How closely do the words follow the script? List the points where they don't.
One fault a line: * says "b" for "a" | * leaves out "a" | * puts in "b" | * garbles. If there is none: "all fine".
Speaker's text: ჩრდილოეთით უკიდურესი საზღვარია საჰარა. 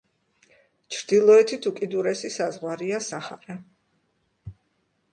all fine